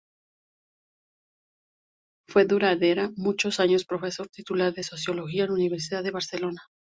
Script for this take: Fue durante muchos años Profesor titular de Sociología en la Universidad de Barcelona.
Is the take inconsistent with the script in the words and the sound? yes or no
no